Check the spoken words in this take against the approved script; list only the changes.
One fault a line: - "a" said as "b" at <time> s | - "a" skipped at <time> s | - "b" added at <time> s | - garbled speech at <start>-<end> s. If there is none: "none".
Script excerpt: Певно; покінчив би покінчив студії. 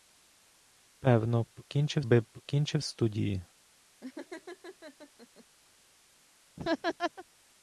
none